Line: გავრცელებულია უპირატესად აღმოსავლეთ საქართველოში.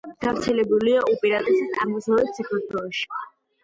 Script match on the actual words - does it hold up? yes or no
yes